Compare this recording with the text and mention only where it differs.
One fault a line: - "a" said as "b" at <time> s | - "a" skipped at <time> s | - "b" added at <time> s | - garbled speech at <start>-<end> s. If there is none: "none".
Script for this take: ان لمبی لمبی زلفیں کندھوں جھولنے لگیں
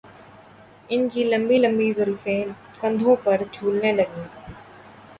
- "کی" added at 1.1 s
- "پر" added at 3.2 s